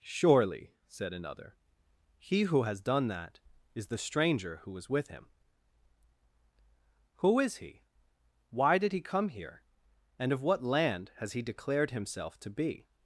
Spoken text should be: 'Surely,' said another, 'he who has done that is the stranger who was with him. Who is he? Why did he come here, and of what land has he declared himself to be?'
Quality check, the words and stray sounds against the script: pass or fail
pass